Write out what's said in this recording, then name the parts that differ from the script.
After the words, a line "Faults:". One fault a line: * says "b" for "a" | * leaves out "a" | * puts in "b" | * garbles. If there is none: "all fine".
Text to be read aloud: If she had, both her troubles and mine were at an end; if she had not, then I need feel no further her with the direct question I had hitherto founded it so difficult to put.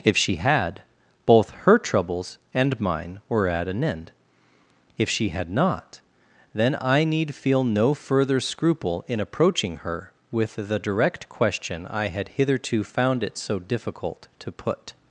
If she had, both her troubles and mine were at an end; if she had not, then I need feel no further scruple in approaching her with the direct question I had hitherto found it so difficult to put.
Faults:
* puts in "scruple in approaching"
* says "found" for "founded"